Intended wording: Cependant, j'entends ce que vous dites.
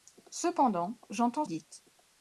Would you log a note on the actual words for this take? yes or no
yes